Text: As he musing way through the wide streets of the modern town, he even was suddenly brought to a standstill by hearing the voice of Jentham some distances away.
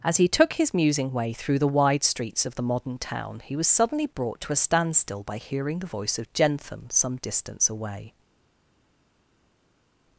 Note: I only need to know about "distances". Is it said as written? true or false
false